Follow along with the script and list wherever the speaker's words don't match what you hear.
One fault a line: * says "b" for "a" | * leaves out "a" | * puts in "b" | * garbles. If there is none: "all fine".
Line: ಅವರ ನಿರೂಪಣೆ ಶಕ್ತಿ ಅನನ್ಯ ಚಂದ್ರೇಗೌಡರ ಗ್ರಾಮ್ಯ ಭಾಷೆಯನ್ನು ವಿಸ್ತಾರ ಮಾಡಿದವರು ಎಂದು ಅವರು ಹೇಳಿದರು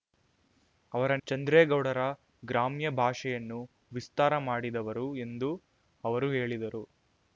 * leaves out "ನಿರೂಪಣೆ ಶಕ್ತಿ ಅನನ್ಯ"